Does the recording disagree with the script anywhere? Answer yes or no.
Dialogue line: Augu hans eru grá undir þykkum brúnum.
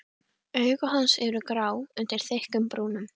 no